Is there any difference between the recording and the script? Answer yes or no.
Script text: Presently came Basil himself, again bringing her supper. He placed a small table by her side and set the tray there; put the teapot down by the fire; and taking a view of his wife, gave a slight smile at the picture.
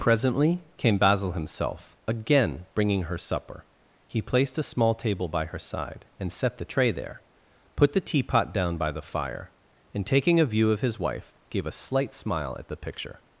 no